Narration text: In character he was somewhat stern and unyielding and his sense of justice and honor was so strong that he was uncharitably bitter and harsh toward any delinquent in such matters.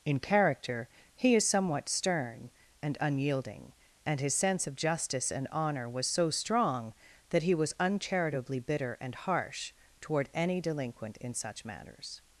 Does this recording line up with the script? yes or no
no